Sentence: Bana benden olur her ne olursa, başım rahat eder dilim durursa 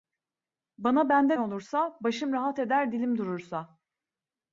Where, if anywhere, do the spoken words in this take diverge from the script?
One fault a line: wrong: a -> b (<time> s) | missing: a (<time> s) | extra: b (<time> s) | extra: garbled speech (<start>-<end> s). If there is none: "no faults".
missing: olur her (1.4 s)